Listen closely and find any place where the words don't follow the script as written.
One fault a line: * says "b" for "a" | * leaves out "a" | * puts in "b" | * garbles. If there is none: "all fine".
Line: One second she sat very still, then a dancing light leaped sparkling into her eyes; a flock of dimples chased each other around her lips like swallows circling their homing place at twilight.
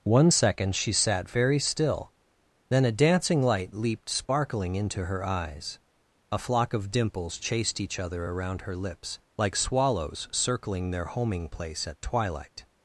all fine